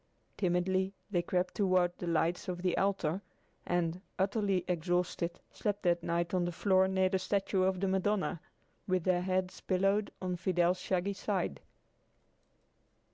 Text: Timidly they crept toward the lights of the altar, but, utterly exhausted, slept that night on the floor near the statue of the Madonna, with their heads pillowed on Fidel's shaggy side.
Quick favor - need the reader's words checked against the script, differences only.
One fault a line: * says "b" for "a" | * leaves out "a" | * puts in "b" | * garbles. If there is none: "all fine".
* says "and" for "but"